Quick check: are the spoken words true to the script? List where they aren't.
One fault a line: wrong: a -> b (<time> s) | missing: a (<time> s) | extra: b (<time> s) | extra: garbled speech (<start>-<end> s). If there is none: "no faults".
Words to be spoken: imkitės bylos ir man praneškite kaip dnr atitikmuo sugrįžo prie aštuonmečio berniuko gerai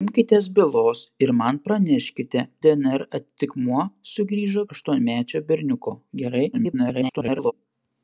missing: kaip (2.4 s)
missing: prie (4.6 s)
extra: garbled speech (6.5-7.5 s)